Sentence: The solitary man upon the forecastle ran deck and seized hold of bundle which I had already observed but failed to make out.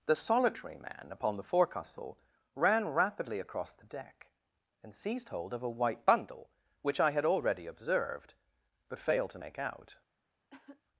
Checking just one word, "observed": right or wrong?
right